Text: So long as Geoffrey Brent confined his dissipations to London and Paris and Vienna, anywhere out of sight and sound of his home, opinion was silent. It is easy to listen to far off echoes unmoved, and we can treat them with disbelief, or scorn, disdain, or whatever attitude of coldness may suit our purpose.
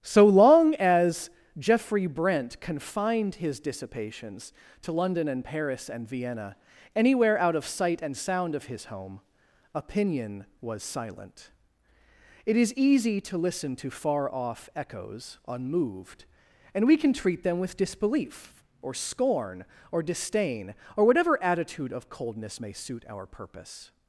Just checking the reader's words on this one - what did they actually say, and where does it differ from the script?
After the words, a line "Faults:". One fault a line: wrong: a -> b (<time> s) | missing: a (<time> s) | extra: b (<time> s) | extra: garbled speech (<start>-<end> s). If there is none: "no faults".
So long as Geoffrey Brent confined his dissipations to London and Paris and Vienna, anywhere out of sight and sound of his home, opinion was silent. It is easy to listen to far off echoes unmoved, and we can treat them with disbelief, or scorn, or disdain, or whatever attitude of coldness may suit our purpose.
Faults:
extra: or (19.9 s)